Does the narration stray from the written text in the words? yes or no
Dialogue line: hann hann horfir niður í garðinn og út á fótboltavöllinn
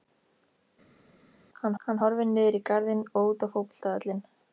no